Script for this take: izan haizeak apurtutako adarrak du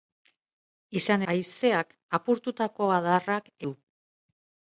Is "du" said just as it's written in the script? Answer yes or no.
yes